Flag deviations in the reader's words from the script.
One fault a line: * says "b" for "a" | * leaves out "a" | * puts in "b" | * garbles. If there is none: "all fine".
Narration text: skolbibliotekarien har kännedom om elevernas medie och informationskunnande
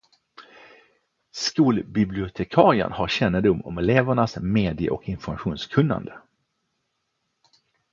all fine